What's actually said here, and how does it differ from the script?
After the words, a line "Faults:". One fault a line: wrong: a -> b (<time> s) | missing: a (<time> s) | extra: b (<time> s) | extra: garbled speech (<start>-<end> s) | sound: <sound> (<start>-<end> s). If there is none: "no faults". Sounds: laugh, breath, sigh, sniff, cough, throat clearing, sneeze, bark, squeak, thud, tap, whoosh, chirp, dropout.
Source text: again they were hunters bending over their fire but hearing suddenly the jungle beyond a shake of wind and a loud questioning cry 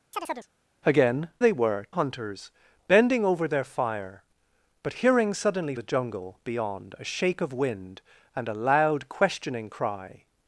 again they were hunters bending over their fire but hearing suddenly the jungle beyond a shake of wind and a loud questioning cry
Faults:
sound: chirp (0.1-0.5 s)